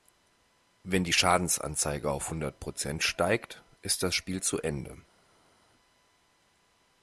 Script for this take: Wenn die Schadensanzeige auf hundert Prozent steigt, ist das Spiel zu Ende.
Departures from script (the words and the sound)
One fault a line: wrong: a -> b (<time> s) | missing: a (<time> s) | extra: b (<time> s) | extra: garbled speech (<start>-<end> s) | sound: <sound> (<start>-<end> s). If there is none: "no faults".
no faults